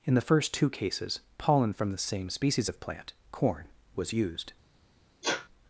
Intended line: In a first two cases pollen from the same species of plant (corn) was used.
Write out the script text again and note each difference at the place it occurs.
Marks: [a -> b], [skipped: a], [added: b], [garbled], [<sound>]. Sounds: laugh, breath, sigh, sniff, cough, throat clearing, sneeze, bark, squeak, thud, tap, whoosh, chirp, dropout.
In [a -> the] first two cases pollen from the same species of plant (corn) was used. [sneeze]